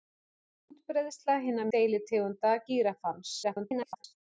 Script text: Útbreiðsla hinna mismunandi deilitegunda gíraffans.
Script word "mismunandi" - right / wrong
wrong